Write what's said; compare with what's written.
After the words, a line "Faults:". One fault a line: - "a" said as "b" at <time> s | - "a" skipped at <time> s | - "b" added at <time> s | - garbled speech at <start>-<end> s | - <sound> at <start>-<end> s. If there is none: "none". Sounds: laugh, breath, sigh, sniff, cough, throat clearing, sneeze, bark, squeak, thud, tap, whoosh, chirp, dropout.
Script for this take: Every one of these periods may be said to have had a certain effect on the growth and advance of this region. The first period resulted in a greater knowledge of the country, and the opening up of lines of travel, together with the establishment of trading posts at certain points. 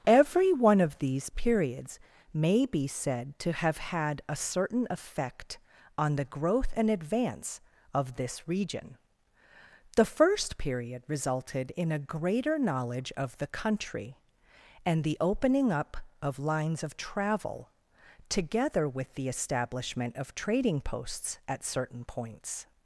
Every one of these periods may be said to have had a certain effect on the growth and advance of this region. The first period resulted in a greater knowledge of the country, and the opening up of lines of travel, together with the establishment of trading posts at certain points.
Faults:
none